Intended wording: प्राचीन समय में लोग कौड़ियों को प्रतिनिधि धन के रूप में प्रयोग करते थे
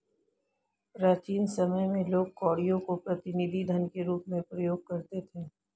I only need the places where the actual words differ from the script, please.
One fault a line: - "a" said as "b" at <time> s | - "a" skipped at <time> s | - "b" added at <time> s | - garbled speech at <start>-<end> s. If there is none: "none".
none